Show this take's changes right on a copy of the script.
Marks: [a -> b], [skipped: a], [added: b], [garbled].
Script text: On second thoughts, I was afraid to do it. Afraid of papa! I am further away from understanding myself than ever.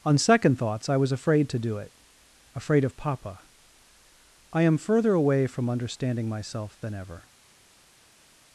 On second thoughts, I was afraid to do it. Afraid of papa! I am further away from understanding myself than ever.